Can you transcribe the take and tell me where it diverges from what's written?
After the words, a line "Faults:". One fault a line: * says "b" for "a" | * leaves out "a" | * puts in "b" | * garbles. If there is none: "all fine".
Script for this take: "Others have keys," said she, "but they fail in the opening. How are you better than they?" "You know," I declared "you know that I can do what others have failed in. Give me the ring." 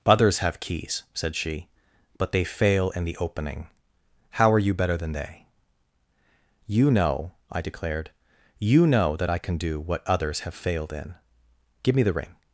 "Others have keys," said she, "but they fail in the opening. How are you better than they?" "You know," I declared "you know that I can do what others have failed in. Give me the ring."
Faults:
all fine